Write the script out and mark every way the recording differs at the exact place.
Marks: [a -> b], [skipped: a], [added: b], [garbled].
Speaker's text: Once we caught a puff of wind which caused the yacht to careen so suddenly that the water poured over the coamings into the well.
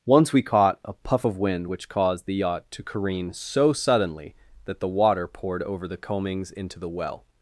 Once we caught a puff of wind which caused the yacht to careen so suddenly that the water poured over the coamings into the well.